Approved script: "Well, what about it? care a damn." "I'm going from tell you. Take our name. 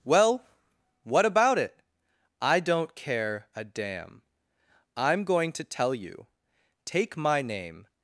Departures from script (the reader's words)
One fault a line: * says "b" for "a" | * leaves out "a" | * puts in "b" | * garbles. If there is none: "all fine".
* puts in "I don't"
* says "to" for "from"
* says "my" for "our"